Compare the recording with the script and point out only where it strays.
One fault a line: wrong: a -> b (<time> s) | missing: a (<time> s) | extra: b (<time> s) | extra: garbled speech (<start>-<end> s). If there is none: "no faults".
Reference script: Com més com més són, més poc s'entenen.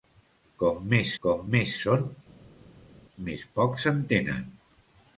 no faults